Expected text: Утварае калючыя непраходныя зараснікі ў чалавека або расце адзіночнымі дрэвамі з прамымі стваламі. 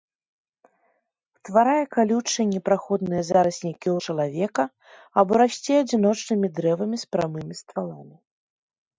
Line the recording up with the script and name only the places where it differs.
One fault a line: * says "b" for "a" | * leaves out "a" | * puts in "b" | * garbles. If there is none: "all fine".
all fine